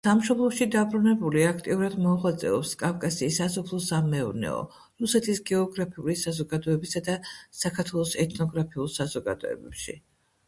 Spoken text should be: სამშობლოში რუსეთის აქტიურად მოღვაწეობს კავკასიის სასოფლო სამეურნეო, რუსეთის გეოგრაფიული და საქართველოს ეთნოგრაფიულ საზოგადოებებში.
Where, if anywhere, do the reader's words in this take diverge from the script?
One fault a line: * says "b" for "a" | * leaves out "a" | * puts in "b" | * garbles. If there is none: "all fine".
* says "დაბრუნებული" for "რუსეთის"
* puts in "საზოგადოებისა"